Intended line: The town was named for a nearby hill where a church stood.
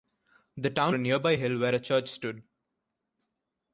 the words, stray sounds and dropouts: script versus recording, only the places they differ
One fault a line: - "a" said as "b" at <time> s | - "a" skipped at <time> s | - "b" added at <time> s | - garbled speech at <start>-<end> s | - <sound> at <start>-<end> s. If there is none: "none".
- "was named for" skipped at 0.9 s